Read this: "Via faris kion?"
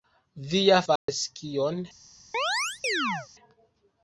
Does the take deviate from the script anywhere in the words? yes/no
no